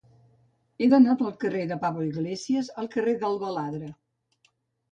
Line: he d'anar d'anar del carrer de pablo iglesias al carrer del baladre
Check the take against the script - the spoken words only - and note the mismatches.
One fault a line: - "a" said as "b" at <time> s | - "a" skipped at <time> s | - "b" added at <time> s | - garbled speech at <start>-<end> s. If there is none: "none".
- "d'anar" skipped at 1.1 s